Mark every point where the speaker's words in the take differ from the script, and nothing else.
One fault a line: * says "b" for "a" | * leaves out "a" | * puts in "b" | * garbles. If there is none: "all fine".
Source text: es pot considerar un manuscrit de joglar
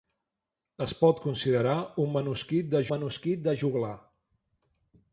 * puts in "manuscrit de"